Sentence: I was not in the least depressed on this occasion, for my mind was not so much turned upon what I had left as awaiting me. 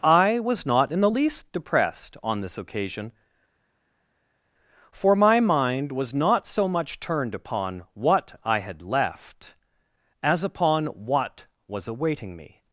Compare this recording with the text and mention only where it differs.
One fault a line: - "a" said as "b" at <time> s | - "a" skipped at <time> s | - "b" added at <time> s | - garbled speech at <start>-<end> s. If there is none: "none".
- "upon what was" added at 10.4 s